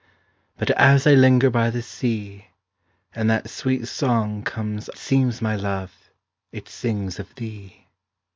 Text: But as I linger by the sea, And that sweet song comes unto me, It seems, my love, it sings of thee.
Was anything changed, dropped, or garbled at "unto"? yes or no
yes